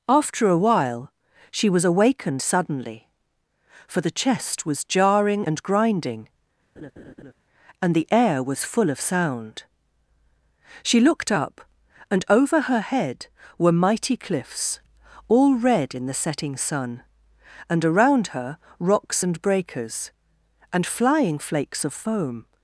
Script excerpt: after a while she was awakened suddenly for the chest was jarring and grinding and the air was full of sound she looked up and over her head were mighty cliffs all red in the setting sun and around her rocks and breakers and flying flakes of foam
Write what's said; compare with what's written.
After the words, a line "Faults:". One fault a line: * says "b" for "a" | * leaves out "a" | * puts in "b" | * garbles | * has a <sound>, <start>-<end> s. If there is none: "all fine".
after a while she was awakened suddenly for the chest was jarring and grinding and the air was full of sound she looked up and over her head were mighty cliffs all red in the setting sun and around her rocks and breakers and flying flakes of foam
Faults:
* has a laugh, 6.8-7.3 s